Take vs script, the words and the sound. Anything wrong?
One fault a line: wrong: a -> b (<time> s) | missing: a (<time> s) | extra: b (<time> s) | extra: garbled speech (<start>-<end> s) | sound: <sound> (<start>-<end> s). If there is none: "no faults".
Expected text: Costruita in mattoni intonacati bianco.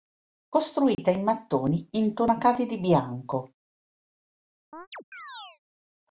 sound: dropout (0.9-1.0 s)
extra: di (2.6 s)
sound: chirp (4.7-5.6 s)